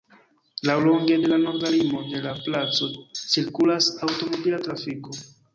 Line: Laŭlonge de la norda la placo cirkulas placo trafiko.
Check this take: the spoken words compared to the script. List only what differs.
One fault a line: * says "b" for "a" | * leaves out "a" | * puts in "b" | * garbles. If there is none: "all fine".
* puts in "limo de"
* says "aŭtomobila" for "placo"